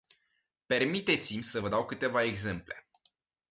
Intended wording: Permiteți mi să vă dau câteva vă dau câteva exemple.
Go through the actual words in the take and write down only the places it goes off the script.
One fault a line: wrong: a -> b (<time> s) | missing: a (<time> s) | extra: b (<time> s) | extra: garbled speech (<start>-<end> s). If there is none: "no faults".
missing: vă dau câteva (2.2 s)